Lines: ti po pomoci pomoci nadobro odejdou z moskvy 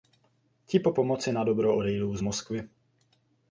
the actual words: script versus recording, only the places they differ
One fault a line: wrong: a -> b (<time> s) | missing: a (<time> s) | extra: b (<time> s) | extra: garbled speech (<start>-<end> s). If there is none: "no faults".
missing: pomoci (1.3 s)